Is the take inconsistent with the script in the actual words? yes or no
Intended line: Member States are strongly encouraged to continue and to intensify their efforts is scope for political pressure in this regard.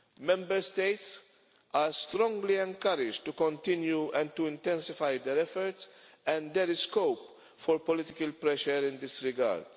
yes